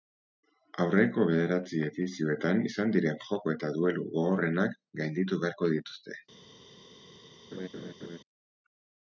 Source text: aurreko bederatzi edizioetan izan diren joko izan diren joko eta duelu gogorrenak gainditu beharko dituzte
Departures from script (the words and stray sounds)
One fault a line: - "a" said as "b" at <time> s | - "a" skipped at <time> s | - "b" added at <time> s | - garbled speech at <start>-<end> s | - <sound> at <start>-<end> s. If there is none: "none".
- "izan diren joko" skipped at 3.5 s
- laugh at 7.5-8.2 s